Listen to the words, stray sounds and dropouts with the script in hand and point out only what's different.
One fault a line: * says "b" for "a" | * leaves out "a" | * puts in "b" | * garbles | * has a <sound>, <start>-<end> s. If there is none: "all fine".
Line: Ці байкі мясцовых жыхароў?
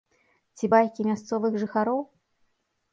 all fine